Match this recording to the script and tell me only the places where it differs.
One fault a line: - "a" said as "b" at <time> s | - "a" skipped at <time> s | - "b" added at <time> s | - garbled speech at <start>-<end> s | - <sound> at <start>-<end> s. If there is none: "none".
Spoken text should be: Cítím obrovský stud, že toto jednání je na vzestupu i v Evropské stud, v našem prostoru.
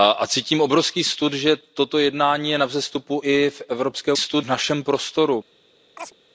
- chirp at 6.0-6.1 s